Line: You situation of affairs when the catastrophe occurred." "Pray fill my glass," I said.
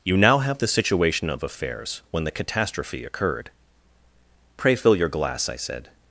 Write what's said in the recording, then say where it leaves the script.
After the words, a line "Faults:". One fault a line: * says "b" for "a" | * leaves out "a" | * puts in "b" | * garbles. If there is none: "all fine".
You now have the situation of affairs when the catastrophe occurred." "Pray fill your glass," I said.
Faults:
* puts in "now have the"
* says "your" for "my"